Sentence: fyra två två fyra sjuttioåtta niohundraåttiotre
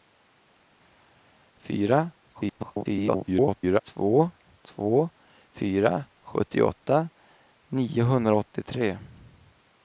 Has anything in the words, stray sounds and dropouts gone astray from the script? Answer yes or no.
yes